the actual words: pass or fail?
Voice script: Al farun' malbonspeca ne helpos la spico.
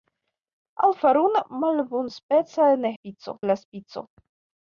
fail